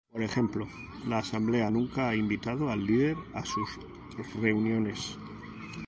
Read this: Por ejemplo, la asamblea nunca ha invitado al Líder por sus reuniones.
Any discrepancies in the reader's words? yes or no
yes